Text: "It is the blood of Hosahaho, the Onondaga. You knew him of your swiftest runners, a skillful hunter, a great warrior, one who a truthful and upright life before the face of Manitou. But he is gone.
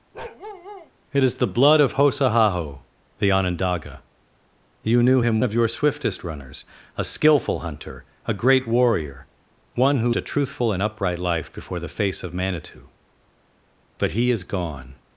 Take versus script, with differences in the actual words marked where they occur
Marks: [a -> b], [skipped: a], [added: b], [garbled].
"It is the blood of Hosahaho, the Onondaga. You knew him of your swiftest runners, a skillful hunter, a great warrior, one who a truthful and upright life before the face of Manitou. But he is gone.